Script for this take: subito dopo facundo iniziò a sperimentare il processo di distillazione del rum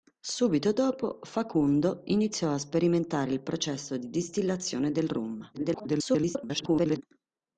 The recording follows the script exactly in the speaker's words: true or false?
false